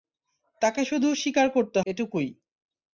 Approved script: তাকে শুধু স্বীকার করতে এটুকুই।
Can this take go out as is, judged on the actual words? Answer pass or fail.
pass